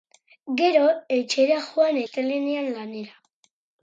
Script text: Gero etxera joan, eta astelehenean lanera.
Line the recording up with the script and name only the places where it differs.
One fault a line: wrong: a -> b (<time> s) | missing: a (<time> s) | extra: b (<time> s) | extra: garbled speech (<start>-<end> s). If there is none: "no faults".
missing: eta (2.0 s)